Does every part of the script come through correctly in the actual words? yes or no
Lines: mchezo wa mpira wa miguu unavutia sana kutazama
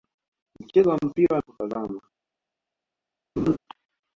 no